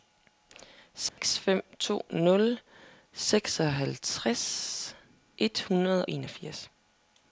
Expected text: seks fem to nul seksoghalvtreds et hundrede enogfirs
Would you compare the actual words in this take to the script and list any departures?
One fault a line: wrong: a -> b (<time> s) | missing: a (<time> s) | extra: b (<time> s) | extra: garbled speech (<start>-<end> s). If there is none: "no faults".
no faults